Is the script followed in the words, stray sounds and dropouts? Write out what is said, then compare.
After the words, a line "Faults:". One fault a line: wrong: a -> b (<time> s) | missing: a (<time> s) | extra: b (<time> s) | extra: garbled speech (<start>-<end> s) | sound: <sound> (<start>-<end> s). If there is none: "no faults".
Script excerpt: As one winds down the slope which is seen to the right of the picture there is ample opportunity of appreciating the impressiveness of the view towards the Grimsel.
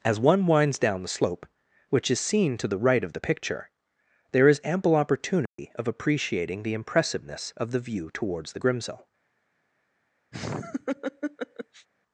As one winds down the slope which is seen to the right of the picture there is ample opportunity of appreciating the impressiveness of the view towards the Grimsel.
Faults:
sound: dropout (5.5-5.6 s)
sound: laugh (10.3-11.9 s)